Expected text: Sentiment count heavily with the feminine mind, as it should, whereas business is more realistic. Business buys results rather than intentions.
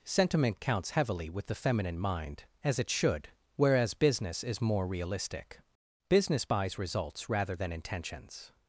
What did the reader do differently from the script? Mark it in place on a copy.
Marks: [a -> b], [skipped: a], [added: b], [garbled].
Sentiment [count -> counts] heavily with the feminine mind, as it should, whereas business is more realistic. Business buys results rather than intentions.